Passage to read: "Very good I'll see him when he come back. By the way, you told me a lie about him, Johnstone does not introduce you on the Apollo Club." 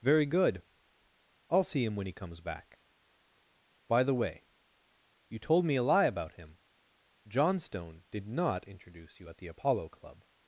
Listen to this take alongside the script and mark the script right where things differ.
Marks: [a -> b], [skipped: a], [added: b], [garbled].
"Very good I'll see him when he [come -> comes] back. By the way, you told me a lie about him, Johnstone [does -> did] not introduce you [on -> at] the Apollo Club."